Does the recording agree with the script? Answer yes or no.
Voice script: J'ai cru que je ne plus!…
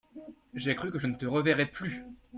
no